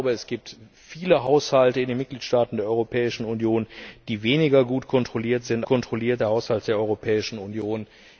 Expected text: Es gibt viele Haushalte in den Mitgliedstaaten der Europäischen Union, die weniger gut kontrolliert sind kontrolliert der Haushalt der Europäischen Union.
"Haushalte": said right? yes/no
yes